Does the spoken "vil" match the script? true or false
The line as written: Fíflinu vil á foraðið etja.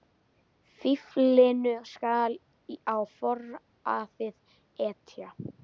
false